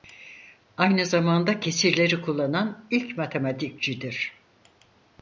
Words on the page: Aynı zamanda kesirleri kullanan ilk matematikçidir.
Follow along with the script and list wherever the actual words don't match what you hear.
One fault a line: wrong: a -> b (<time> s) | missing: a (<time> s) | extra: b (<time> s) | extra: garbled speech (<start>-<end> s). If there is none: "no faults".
no faults